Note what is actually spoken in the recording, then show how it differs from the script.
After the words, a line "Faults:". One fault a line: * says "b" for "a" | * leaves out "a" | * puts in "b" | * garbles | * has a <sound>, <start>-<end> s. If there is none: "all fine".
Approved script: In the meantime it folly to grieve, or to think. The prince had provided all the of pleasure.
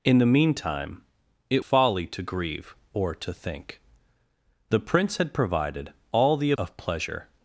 In the meantime it folly to grieve, or to think. The prince had provided all the of pleasure.
Faults:
all fine